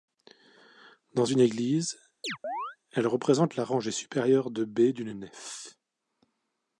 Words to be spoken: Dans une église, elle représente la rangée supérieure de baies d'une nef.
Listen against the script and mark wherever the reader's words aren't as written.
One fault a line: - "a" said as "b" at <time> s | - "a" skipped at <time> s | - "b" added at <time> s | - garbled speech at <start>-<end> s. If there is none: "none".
none